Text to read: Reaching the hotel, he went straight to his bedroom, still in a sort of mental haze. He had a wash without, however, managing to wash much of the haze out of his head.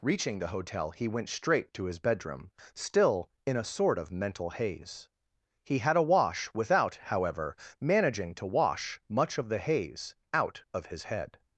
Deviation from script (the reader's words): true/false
false